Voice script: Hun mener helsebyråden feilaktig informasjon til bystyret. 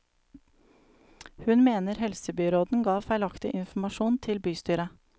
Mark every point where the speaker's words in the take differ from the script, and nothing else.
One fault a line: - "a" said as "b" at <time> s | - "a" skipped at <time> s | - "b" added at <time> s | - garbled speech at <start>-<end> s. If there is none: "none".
- "ga" added at 2.8 s